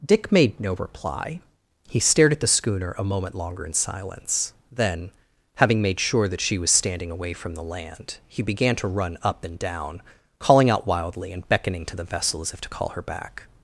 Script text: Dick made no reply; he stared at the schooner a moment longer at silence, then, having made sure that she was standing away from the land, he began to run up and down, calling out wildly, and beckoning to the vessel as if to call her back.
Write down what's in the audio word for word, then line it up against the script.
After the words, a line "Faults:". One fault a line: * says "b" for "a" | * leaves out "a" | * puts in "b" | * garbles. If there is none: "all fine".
Dick made no reply; he stared at the schooner a moment longer in silence, then, having made sure that she was standing away from the land, he began to run up and down, calling out wildly, and beckoning to the vessel as if to call her back.
Faults:
* says "in" for "at"